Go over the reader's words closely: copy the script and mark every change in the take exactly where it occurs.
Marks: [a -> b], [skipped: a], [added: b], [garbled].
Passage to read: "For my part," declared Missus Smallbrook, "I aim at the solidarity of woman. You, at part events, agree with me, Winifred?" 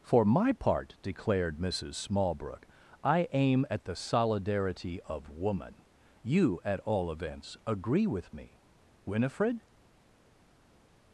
"For my part," declared Missus Smallbrook, "I aim at the solidarity of woman. You, at [part -> all] events, agree with me, Winifred?"